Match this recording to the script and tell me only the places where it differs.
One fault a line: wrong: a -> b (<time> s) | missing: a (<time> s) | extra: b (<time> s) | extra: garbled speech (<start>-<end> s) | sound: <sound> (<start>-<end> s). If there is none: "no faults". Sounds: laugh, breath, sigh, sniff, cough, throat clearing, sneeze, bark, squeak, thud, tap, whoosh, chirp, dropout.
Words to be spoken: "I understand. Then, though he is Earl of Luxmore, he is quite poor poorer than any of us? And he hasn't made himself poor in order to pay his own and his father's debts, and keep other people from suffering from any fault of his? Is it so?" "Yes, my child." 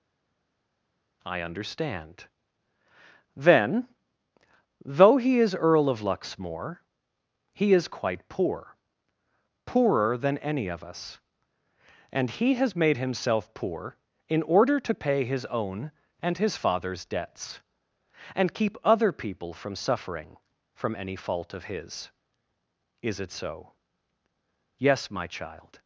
wrong: hasn't -> has (12.5 s)